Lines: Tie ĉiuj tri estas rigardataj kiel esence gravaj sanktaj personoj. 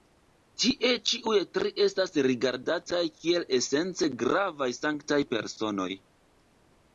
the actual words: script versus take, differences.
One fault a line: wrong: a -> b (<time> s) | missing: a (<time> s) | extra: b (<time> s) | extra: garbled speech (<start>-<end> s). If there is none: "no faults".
no faults